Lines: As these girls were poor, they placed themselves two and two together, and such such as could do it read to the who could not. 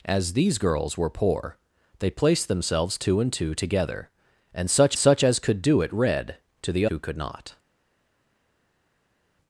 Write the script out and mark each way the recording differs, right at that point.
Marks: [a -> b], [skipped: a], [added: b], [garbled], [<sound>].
As these girls were poor, they placed themselves two and two together, and such such as could do it read to the who could not.